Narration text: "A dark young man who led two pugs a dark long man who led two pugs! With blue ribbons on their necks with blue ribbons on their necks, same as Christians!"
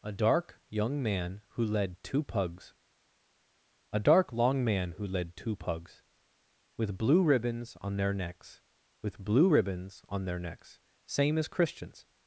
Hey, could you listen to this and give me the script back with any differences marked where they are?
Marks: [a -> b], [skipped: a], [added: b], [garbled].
"A dark young man who led two pugs a dark long man who led two pugs! With blue ribbons on their necks with blue ribbons on their necks, same as Christians!"